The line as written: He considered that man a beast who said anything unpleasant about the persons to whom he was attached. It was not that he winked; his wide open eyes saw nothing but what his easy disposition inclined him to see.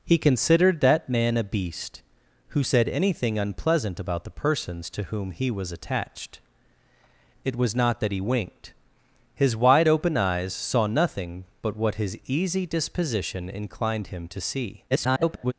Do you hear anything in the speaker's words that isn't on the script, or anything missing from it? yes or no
yes